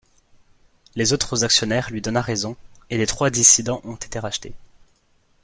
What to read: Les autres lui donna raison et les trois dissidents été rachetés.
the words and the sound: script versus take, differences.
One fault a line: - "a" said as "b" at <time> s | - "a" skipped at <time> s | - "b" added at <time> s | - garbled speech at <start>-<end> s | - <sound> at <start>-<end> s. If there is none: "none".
- "actionnaires" added at 1.4 s
- "ont" added at 3.8 s